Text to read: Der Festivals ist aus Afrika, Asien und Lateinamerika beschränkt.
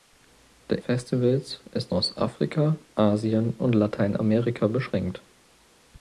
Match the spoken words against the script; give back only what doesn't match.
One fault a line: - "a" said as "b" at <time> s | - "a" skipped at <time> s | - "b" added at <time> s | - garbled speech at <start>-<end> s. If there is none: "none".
none